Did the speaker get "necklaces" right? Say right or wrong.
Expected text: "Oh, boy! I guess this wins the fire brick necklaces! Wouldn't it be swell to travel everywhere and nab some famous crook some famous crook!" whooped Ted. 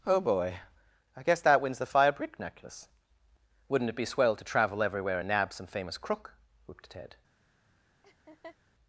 wrong